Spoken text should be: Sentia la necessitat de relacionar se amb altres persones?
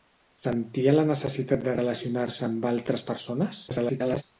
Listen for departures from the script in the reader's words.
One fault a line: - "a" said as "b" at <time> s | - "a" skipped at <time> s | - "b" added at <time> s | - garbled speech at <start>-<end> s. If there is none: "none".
- garbled speech at 3.7-4.2 s